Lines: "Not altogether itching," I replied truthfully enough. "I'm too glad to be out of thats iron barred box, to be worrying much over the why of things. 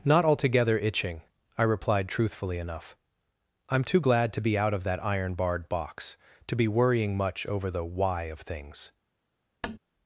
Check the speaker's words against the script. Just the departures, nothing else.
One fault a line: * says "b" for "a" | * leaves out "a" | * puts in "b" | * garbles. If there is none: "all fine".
* says "that" for "thats"